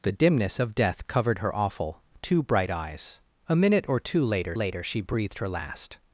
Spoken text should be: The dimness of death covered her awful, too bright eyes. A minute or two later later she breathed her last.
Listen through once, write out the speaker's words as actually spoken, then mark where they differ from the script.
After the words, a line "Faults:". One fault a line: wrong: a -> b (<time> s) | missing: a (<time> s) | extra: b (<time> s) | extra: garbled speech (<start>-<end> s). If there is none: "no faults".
The dimness of death covered her awful, too bright eyes. A minute or two later later she breathed her last.
Faults:
no faults